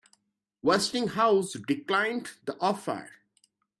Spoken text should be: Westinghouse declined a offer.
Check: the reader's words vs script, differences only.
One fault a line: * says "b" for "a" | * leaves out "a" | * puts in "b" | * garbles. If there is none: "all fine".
* says "the" for "a"